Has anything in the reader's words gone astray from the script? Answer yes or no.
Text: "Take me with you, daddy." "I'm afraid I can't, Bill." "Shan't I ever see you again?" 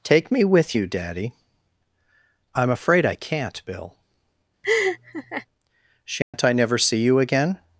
yes